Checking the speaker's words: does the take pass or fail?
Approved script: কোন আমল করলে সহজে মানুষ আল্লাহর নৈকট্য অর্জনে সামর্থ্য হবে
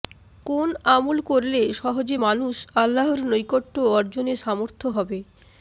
pass